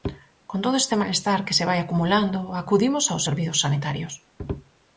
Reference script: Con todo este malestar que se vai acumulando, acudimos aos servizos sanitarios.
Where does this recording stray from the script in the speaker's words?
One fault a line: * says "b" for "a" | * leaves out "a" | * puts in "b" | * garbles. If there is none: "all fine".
all fine